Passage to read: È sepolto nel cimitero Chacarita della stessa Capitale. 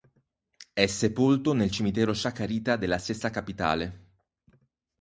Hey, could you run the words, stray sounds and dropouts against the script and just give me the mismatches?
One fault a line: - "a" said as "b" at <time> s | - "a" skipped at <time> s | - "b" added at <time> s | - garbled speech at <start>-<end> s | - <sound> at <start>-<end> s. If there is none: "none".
none